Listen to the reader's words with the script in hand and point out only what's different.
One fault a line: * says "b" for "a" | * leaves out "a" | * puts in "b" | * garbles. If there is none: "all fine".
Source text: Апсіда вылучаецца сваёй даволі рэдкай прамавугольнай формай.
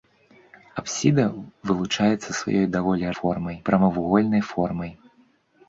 * says "формай" for "рэдкай"